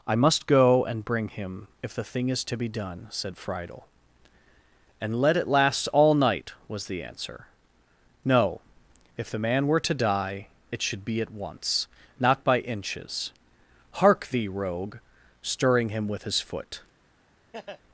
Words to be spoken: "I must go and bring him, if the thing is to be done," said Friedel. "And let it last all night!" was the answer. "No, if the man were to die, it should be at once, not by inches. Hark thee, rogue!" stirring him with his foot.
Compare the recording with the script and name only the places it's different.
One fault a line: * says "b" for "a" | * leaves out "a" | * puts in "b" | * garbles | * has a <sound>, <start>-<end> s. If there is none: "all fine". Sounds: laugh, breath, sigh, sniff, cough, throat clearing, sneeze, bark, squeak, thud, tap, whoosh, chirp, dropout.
* has a laugh, 17.5-17.8 s